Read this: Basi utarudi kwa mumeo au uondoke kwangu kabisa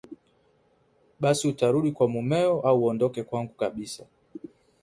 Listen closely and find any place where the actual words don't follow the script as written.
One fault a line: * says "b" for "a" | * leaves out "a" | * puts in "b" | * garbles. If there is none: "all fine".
all fine